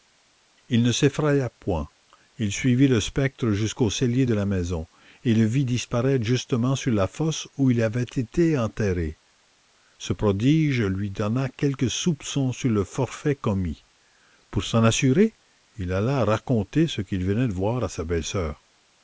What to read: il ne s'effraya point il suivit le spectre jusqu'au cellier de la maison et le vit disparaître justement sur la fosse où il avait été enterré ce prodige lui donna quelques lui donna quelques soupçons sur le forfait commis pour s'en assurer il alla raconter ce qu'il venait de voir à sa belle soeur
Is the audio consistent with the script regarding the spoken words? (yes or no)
no